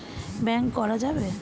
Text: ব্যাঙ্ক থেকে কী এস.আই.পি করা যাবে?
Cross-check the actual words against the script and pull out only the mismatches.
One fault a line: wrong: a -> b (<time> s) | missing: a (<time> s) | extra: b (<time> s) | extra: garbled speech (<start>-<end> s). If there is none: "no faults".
missing: থেকে কী এস.আই.পি (0.7 s)